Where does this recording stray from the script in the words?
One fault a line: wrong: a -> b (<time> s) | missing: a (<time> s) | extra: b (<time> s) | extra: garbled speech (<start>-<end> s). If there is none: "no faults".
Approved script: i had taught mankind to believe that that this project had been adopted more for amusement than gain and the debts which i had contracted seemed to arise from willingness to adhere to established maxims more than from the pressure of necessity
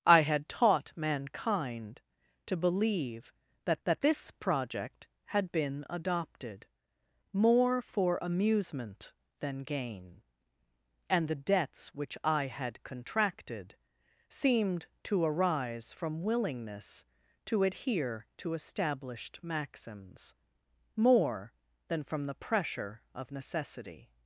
no faults